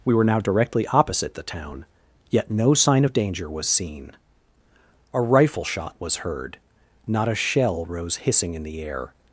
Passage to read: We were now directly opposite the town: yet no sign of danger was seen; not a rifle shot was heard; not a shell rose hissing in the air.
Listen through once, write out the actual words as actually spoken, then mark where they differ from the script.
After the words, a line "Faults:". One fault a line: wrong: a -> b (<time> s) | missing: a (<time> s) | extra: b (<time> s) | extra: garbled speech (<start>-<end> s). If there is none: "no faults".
We were now directly opposite the town: yet no sign of danger was seen; a rifle shot was heard; not a shell rose hissing in the air.
Faults:
missing: not (4.1 s)